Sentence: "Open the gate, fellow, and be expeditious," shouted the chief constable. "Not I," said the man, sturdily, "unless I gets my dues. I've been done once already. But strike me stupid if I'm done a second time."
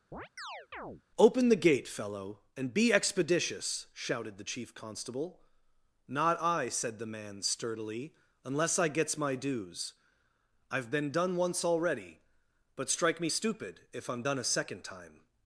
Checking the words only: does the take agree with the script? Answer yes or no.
yes